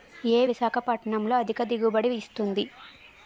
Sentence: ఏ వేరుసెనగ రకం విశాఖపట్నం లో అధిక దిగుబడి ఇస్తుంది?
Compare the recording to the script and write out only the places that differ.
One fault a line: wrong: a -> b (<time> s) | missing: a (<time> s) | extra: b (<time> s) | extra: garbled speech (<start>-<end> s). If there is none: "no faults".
missing: వేరుసెనగ రకం (0.5 s)